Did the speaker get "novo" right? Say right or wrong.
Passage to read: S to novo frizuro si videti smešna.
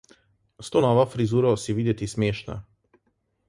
right